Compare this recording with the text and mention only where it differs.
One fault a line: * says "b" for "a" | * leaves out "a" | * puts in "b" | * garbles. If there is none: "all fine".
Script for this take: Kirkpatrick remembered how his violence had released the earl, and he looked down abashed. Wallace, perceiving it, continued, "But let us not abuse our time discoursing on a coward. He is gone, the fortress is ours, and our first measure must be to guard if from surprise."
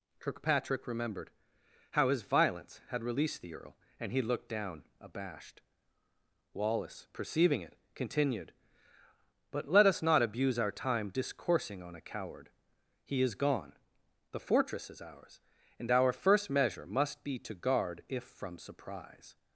all fine